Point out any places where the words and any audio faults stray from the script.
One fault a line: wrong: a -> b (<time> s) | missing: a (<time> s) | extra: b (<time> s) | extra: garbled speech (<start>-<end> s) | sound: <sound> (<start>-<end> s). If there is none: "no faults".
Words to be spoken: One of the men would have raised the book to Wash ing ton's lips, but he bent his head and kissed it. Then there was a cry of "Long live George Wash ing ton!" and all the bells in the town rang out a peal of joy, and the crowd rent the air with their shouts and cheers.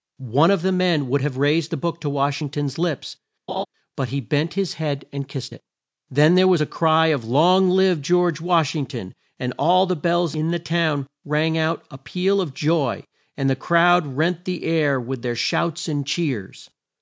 sound: laugh (3.5-3.7 s)